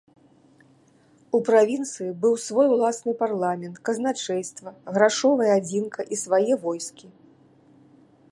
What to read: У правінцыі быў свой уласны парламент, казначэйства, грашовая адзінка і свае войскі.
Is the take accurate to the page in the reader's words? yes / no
yes